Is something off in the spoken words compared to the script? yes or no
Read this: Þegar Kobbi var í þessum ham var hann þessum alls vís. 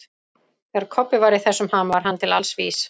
yes